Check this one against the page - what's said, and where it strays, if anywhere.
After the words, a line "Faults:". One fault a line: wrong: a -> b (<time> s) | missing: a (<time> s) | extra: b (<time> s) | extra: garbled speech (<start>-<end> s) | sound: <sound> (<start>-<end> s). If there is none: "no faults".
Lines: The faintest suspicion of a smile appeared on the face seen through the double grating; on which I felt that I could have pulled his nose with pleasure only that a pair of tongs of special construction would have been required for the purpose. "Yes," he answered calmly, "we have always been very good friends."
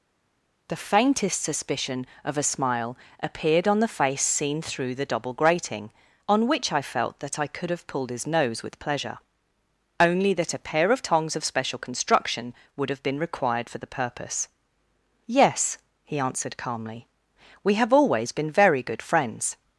The faintest suspicion of a smile appeared on the face seen through the double grating; on which I felt that I could have pulled his nose with pleasure only that a pair of tongs of special construction would have been required for the purpose. "Yes," he answered calmly, "we have always been very good friends."
Faults:
no faults